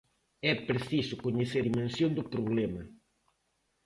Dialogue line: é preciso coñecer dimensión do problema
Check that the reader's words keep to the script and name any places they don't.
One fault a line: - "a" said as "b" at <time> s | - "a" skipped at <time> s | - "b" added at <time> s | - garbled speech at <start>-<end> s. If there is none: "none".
none